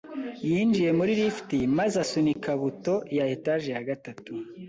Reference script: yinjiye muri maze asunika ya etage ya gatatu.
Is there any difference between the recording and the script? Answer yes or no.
yes